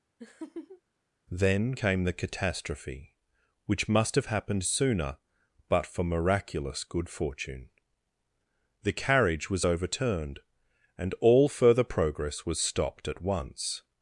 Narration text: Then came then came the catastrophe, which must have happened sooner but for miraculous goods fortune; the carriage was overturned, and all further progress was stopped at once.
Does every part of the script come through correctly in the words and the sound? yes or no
no